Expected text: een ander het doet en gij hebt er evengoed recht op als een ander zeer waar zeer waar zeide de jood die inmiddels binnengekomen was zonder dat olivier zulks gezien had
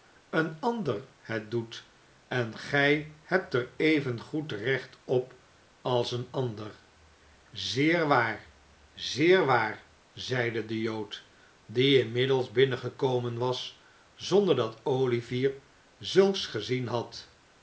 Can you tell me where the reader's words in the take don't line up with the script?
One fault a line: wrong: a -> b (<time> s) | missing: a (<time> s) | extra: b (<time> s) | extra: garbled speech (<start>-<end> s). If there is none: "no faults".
no faults